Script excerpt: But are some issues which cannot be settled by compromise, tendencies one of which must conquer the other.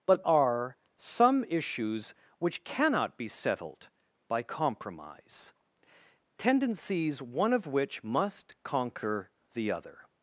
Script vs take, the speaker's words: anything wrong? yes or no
no